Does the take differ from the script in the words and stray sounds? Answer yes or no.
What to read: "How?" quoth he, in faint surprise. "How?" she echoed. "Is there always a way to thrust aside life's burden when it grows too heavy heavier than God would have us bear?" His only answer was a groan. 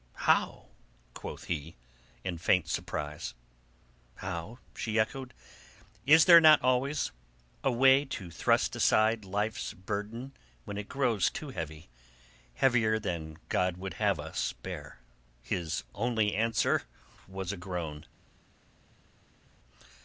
yes